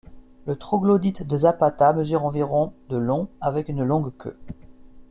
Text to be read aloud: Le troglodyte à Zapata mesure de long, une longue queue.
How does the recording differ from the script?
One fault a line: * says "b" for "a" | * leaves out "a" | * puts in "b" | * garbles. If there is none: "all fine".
* says "de" for "à"
* puts in "environ"
* puts in "avec"